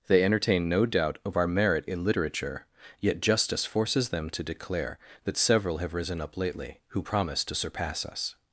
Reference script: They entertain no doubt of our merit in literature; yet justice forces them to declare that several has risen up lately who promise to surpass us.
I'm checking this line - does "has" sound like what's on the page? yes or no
no